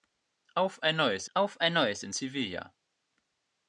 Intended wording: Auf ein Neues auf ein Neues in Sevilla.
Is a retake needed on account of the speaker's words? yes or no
no